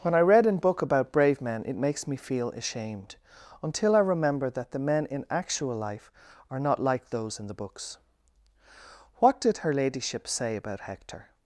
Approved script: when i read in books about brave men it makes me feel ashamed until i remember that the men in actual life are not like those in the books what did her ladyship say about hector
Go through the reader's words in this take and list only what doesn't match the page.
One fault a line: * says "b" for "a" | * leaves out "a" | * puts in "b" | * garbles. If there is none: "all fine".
* says "book" for "books"